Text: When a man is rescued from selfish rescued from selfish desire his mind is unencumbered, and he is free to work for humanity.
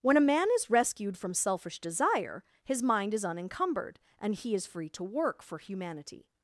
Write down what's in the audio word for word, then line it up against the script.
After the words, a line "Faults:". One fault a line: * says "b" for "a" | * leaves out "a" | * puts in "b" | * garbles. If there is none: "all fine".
When a man is rescued from selfish desire his mind is unencumbered, and he is free to work for humanity.
Faults:
* leaves out "rescued from selfish"